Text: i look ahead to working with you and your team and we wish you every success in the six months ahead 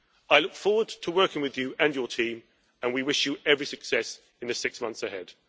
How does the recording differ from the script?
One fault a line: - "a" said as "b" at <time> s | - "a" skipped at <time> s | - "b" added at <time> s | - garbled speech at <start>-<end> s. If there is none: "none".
- "ahead" said as "forward" at 0.6 s